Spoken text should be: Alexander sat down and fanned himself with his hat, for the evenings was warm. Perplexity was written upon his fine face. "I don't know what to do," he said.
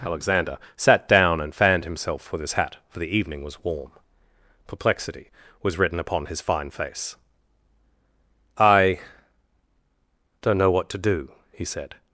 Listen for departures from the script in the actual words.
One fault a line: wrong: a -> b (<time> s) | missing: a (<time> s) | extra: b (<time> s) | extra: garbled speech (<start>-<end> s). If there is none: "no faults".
wrong: evenings -> evening (3.2 s)